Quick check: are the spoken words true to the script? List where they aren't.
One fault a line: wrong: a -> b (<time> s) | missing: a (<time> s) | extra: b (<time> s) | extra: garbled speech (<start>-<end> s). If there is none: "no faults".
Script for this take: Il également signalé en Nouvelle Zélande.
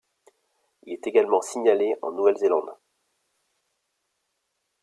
extra: est (0.9 s)